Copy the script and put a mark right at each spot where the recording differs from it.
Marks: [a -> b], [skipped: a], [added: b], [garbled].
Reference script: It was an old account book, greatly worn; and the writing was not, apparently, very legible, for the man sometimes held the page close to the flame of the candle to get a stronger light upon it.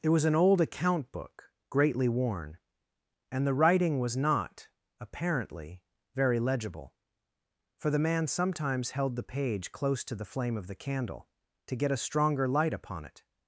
It was an old account book, greatly worn; and the writing was not, apparently, very legible, for the man sometimes held the page close to the flame of the candle to get a stronger light upon it.